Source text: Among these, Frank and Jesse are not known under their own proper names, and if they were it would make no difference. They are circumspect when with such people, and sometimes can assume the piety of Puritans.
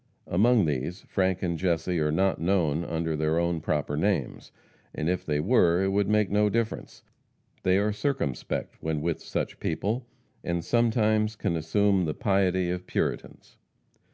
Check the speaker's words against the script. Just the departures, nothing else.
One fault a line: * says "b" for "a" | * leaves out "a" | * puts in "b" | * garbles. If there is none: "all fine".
all fine